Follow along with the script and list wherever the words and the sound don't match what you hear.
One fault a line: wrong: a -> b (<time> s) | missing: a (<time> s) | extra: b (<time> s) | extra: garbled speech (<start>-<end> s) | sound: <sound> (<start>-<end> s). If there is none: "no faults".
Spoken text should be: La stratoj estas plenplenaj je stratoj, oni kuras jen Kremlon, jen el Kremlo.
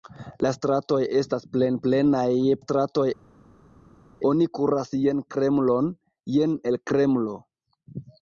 no faults